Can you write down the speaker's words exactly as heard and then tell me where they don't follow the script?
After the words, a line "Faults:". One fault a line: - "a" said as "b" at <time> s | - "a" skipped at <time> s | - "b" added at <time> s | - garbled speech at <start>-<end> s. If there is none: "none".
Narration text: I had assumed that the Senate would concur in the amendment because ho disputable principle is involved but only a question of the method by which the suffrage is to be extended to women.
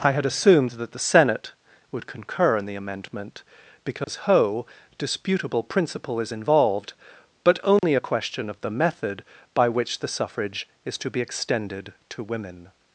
I had assumed that the Senate would concur in the amendment because ho disputable principle is involved but only a question of the method by which the suffrage is to be extended to women.
Faults:
none